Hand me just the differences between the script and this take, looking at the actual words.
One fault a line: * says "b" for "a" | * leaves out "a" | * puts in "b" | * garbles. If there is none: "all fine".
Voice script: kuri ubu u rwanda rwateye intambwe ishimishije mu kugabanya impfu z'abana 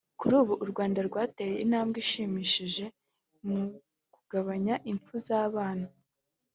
all fine